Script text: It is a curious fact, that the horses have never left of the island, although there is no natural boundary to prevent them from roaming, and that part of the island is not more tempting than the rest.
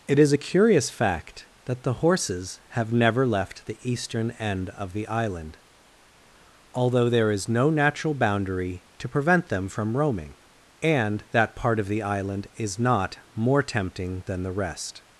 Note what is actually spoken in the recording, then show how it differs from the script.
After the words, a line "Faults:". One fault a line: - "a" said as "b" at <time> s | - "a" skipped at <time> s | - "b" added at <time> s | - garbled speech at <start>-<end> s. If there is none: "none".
It is a curious fact, that the horses have never left the eastern end of the island, although there is no natural boundary to prevent them from roaming, and that part of the island is not more tempting than the rest.
Faults:
- "the eastern end" added at 3.7 s